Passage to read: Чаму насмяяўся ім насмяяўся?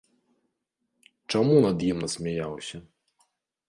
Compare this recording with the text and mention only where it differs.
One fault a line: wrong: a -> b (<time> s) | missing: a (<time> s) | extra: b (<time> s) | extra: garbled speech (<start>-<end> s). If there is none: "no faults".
wrong: насмяяўся -> над (1.6 s)